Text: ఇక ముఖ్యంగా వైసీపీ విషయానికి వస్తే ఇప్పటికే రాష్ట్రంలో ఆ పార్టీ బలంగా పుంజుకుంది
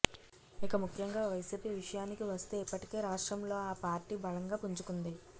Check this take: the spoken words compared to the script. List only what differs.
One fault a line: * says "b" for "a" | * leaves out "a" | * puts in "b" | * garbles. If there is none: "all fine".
all fine